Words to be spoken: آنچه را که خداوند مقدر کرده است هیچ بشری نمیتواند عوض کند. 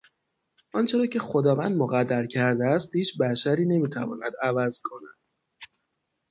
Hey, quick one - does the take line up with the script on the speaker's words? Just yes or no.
yes